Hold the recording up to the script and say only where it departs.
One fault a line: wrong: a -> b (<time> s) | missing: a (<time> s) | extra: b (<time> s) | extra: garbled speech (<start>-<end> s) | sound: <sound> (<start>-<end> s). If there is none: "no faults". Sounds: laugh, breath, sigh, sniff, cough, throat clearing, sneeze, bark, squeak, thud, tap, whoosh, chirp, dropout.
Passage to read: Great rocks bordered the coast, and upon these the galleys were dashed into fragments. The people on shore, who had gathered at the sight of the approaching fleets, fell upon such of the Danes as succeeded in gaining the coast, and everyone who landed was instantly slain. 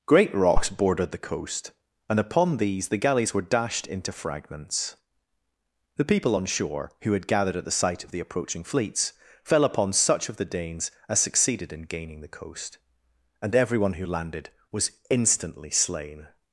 no faults